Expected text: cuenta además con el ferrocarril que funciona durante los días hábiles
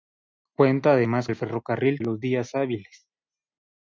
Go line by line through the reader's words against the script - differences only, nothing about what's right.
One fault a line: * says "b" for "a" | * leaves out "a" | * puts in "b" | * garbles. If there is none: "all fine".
* leaves out "con"
* leaves out "que funciona durante"